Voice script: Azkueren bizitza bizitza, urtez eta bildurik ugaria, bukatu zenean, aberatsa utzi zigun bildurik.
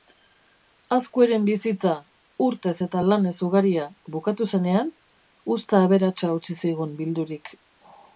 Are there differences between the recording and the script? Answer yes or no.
yes